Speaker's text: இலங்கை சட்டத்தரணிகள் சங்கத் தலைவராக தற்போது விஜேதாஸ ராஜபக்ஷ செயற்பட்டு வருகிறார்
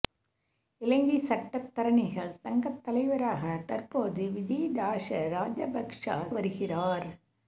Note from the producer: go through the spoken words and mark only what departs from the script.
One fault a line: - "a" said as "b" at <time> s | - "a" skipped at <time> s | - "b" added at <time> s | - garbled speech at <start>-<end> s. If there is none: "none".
- "செயற்பட்டு" skipped at 6.0 s